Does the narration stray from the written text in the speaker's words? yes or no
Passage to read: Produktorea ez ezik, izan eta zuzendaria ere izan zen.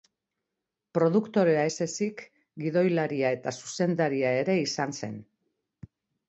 yes